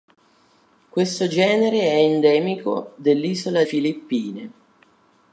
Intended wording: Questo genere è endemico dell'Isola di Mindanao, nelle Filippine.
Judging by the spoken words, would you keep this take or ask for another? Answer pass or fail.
fail